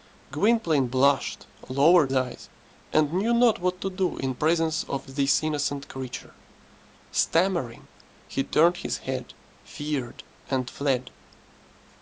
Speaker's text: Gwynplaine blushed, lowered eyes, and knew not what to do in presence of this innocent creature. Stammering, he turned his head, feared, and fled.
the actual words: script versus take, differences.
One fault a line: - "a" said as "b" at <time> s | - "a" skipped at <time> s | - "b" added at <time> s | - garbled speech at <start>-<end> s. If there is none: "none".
none